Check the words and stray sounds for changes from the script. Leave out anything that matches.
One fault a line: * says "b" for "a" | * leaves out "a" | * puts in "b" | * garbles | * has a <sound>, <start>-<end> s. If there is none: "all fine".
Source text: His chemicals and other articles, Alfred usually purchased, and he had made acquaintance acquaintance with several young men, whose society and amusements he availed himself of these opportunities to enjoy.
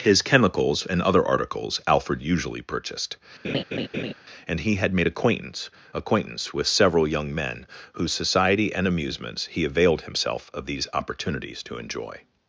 * has a laugh, 3.4-4.1 s